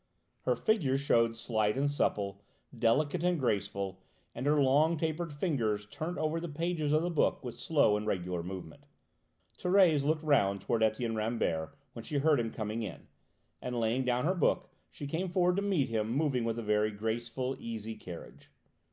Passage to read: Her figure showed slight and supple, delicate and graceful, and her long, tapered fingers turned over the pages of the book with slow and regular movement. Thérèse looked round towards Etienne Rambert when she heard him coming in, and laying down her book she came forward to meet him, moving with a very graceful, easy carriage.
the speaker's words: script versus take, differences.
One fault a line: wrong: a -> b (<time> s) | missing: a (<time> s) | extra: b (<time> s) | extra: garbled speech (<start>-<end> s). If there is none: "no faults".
no faults